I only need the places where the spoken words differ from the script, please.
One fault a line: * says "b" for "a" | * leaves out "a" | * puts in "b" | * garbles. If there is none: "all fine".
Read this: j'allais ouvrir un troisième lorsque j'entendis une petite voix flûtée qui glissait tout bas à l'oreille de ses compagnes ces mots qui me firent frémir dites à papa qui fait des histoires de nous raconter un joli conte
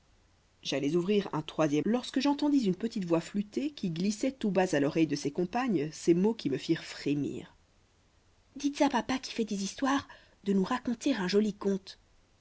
all fine